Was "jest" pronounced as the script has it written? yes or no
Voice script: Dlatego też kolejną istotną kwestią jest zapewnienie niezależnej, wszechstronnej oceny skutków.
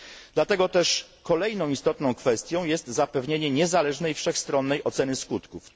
yes